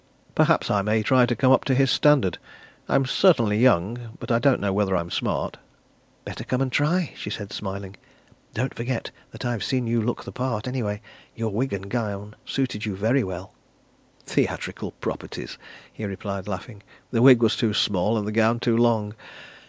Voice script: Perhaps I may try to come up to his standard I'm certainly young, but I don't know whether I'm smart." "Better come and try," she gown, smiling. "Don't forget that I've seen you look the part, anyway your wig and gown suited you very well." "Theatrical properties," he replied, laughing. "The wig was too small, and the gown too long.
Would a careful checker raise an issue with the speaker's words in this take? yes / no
yes